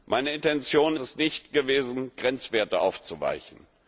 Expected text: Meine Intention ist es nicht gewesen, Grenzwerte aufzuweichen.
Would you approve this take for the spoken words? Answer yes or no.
no